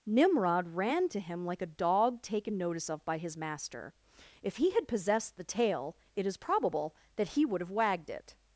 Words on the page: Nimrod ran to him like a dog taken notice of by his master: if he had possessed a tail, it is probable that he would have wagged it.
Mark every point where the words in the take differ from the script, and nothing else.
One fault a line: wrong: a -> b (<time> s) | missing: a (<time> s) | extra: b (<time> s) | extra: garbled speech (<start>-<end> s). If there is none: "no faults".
wrong: a -> the (5.4 s)